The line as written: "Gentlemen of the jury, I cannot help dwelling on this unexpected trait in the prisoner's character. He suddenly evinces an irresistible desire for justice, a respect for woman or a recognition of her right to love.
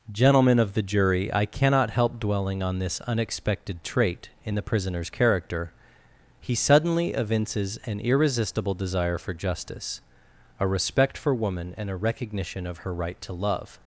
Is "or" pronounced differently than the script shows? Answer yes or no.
yes